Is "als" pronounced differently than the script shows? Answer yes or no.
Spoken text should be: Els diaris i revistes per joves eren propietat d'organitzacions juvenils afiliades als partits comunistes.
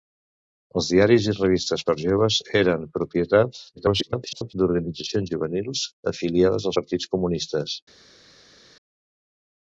yes